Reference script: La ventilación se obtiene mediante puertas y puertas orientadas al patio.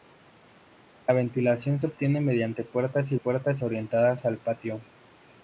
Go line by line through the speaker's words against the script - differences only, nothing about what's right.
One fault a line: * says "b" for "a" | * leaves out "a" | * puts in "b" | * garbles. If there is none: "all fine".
all fine